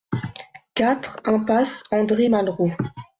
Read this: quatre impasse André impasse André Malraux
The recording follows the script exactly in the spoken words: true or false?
false